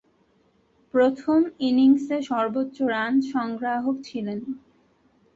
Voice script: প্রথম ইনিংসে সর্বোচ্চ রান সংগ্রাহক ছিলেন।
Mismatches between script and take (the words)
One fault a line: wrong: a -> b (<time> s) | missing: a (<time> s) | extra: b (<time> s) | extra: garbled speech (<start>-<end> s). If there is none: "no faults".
no faults